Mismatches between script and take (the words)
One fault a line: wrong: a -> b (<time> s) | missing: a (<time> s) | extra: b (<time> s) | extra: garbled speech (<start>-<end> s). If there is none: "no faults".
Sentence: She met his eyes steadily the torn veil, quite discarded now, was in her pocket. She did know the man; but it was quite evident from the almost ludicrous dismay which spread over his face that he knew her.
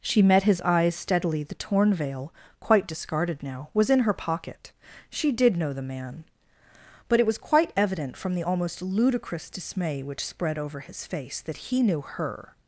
no faults